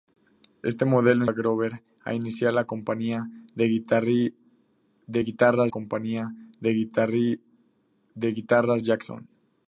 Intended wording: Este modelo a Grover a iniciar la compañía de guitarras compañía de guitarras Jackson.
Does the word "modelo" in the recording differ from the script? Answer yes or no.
no